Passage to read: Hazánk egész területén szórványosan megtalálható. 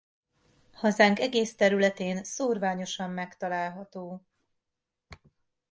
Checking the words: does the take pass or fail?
pass